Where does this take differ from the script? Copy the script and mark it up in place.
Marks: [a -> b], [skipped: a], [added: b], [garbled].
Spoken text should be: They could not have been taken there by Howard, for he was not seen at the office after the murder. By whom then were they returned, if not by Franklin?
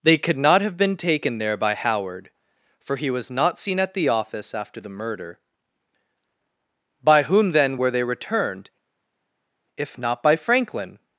They could not have been taken there by Howard, for he was not seen at the office after the murder. By whom then were they returned, if not by Franklin?